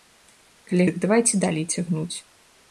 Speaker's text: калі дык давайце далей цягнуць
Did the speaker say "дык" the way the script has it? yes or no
yes